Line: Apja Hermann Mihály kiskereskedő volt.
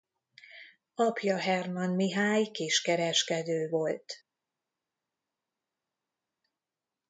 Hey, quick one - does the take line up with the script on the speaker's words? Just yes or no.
yes